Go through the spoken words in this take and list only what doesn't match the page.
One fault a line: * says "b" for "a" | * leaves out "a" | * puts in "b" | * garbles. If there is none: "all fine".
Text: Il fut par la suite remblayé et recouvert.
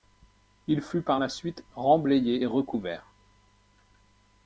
all fine